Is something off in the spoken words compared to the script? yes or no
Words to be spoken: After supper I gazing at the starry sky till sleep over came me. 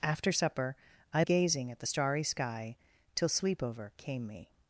no